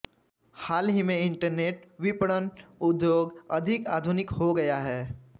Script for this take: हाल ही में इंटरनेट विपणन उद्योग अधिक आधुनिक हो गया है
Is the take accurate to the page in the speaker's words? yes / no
yes